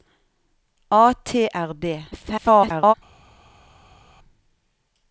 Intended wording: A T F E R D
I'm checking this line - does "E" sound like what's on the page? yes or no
no